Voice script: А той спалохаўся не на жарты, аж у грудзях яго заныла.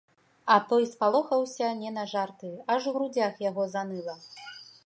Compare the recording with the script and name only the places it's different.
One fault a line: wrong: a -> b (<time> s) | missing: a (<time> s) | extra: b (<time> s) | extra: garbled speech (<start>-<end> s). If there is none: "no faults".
no faults